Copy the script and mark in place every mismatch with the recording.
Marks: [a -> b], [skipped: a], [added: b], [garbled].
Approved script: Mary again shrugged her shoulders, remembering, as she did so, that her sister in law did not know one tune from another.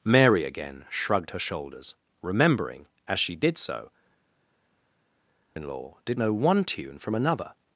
Mary again shrugged her shoulders, remembering, as she did so, [skipped: that her sister] in law did [skipped: not] know one tune from another.